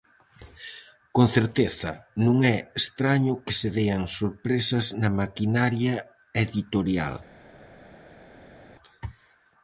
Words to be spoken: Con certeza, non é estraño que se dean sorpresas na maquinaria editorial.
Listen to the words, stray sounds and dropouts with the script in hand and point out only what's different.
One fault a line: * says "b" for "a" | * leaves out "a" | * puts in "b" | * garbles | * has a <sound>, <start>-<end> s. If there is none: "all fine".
all fine